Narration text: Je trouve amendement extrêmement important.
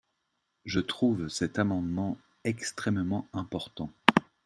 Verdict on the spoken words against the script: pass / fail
fail